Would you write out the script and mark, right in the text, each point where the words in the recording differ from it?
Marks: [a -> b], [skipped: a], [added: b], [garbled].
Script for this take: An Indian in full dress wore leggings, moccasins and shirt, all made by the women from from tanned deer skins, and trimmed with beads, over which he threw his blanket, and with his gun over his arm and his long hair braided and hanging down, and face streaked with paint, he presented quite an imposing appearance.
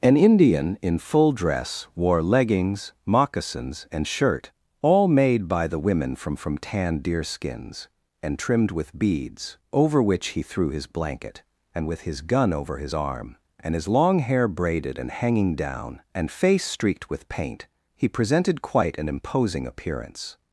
An Indian in full dress wore leggings, moccasins and shirt, all made by the women from from tanned deer skins, and trimmed with beads, over which he threw his blanket, and with his gun over his arm and his long hair braided and hanging down, and face streaked with paint, he presented quite an imposing appearance.